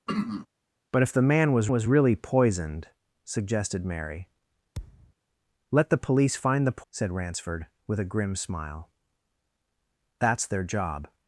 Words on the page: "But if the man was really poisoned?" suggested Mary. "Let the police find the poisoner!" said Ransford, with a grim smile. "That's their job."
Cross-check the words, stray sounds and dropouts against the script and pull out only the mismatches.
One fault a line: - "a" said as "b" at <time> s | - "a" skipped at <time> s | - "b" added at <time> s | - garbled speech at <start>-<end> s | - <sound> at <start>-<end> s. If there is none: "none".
- throat clearing at 0.1-0.5 s
- "was" added at 1.7 s
- thud at 4.7-5.1 s
- "poisoner" skipped at 6.8 s